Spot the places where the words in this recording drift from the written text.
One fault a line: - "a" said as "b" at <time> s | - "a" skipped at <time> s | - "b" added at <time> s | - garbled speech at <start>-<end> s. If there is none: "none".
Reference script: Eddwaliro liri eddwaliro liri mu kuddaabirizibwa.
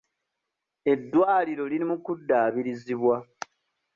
- "eddwaliro liri" skipped at 1.9 s